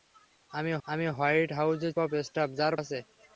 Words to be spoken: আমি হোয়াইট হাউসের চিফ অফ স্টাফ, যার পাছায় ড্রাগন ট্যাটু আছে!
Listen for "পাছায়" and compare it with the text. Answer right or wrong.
wrong